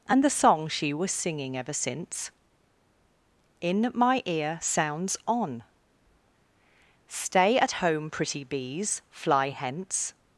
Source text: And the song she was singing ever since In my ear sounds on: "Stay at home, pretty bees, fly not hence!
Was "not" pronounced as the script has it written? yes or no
no